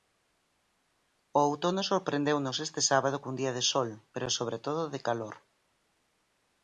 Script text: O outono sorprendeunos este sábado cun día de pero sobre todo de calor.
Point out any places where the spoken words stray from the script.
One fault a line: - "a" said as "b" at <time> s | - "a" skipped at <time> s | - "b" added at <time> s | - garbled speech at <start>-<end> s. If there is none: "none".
- "sol" added at 3.7 s